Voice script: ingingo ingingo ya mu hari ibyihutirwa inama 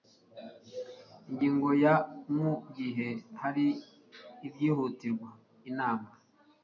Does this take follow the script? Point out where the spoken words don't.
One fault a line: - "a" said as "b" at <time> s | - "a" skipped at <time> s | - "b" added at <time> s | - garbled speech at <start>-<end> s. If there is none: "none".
- "ingingo" skipped at 1.7 s
- "gihe" added at 2.8 s